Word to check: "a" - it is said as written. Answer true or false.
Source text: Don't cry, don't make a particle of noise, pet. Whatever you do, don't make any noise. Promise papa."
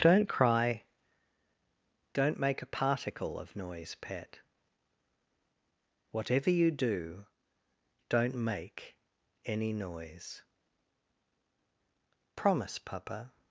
true